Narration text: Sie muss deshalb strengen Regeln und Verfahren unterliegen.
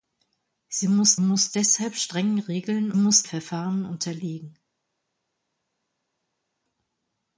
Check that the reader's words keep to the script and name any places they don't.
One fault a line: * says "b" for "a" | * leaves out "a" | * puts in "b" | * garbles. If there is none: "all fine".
* puts in "muss"
* says "muss" for "und"